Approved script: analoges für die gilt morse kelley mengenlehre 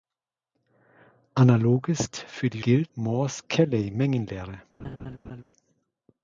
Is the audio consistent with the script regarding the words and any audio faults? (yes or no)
no